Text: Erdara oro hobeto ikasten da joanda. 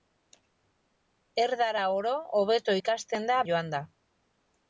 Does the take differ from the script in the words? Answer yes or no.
no